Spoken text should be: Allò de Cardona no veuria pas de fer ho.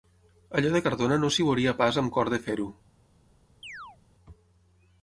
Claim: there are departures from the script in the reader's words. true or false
true